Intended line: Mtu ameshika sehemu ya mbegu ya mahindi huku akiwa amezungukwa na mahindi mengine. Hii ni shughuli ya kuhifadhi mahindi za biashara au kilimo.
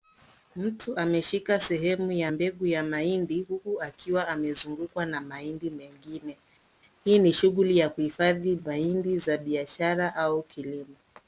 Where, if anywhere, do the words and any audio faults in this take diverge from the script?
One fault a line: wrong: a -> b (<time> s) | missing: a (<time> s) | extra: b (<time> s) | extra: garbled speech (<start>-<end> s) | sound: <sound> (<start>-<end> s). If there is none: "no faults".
no faults